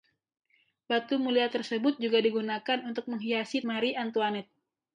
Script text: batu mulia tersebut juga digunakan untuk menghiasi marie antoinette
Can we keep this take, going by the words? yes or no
yes